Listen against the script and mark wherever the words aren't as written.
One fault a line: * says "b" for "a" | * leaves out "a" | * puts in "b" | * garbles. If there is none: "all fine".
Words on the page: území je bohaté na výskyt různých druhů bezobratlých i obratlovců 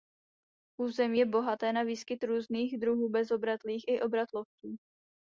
all fine